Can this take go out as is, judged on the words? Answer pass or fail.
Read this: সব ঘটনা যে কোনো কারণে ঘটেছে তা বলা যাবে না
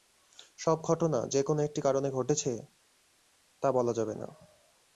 fail